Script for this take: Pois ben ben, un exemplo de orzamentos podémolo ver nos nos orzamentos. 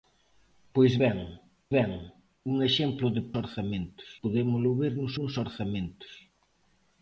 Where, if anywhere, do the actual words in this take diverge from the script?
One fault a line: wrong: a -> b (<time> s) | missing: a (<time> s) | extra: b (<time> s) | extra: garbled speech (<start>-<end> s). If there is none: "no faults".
no faults